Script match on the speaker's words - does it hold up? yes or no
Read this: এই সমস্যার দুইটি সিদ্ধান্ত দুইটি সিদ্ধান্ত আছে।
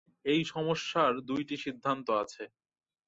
no